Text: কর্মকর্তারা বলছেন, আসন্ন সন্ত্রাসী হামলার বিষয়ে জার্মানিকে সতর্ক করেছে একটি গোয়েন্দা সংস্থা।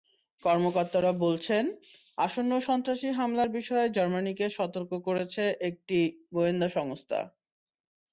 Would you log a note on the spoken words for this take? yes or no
no